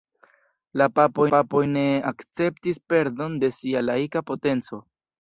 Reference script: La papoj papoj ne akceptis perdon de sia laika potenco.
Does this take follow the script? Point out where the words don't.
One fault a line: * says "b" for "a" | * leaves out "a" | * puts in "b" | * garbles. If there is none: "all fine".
all fine